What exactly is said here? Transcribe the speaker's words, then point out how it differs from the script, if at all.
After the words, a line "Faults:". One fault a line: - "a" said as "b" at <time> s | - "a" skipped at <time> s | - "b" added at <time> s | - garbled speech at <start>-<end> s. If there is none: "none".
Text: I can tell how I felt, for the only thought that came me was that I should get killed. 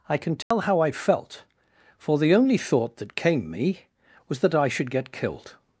I can tell how I felt, for the only thought that came me was that I should get killed.
Faults:
none